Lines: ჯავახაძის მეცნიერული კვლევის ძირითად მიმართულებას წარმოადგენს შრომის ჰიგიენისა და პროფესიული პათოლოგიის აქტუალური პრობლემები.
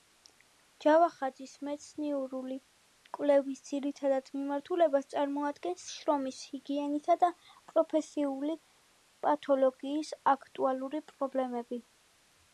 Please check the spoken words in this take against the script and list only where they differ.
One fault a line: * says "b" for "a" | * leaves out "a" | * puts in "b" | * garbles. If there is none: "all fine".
all fine